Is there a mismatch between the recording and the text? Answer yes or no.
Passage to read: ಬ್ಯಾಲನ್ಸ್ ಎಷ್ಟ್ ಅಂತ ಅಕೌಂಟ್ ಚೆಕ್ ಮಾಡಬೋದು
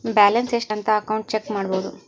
no